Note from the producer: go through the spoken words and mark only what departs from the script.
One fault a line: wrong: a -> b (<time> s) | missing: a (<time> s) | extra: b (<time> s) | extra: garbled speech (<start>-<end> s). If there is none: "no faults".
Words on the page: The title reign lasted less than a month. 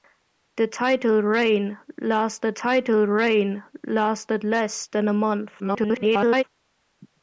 extra: title reign lasted (2.5 s)
extra: garbled speech (5.6-6.4 s)